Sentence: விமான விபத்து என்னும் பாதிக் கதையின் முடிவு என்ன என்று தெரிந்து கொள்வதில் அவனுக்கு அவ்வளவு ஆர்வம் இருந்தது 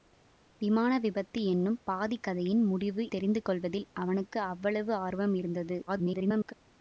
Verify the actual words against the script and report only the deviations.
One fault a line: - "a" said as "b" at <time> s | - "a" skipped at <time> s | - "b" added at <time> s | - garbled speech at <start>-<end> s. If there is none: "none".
- "என்ன என்று" skipped at 3.0 s
- garbled speech at 5.9-6.5 s